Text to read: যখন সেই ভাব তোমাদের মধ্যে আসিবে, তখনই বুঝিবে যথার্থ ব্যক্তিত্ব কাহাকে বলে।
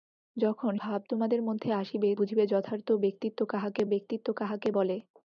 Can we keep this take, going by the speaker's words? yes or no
no